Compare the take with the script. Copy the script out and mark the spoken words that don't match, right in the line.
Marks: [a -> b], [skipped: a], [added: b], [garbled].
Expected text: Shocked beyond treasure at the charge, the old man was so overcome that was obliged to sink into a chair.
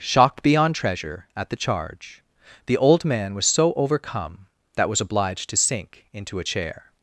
Shocked beyond treasure at the charge, the old man was so overcome that was obliged to sink into a chair.